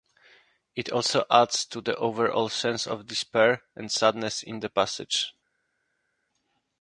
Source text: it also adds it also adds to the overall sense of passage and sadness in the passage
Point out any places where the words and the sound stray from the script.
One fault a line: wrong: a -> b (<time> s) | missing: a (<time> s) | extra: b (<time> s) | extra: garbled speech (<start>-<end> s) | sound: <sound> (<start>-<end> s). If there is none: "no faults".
missing: it also adds (1.6 s)
wrong: passage -> despair (3.0 s)